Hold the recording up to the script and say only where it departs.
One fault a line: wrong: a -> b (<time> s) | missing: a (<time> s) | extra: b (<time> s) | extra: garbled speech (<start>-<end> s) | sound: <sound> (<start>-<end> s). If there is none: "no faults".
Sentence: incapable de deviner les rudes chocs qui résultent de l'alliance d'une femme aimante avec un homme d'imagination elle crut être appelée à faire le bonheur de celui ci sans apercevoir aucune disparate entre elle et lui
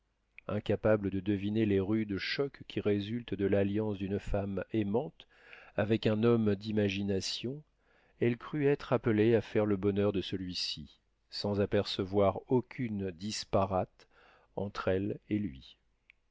no faults